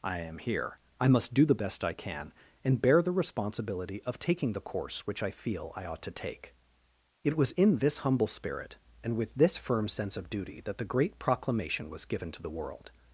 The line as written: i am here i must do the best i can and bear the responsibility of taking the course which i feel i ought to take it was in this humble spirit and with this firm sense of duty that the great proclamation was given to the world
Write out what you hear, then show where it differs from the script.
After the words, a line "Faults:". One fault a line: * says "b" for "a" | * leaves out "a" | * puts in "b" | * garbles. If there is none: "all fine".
i am here i must do the best i can and bear the responsibility of taking the course which i feel i ought to take it was in this humble spirit and with this firm sense of duty that the great proclamation was given to the world
Faults:
all fine